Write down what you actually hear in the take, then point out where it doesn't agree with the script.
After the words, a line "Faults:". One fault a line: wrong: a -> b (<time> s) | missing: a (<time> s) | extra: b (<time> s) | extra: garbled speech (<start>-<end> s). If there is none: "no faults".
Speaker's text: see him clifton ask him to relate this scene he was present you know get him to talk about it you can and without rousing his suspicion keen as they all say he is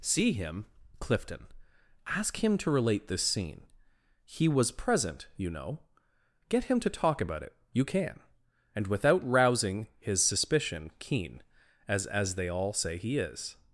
see him clifton ask him to relate this scene he was present you know get him to talk about it you can and without rousing his suspicion keen as as they all say he is
Faults:
extra: as (12.1 s)